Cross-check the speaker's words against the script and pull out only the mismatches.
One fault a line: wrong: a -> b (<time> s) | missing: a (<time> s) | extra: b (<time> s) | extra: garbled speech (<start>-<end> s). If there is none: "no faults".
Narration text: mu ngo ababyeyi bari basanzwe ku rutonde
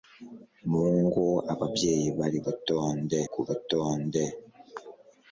wrong: basanzwe -> rutonde (2.5 s)